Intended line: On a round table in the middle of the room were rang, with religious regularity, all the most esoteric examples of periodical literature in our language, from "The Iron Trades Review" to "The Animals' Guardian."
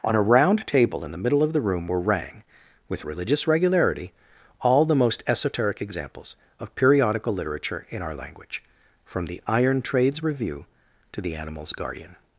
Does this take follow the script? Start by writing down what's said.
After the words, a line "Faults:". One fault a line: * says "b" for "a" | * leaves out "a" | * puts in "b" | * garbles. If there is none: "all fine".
On a round table in the middle of the room were rang, with religious regularity, all the most esoteric examples of periodical literature in our language, from "The Iron Trades Review" to "The Animals' Guardian."
Faults:
all fine